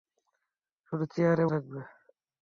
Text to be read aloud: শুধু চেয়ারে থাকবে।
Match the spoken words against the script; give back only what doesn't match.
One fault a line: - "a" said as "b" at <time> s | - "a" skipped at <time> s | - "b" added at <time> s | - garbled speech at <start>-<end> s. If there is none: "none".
none